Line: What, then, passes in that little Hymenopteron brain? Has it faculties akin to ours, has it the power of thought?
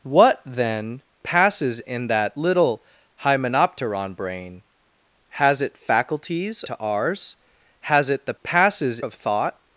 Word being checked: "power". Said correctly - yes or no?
no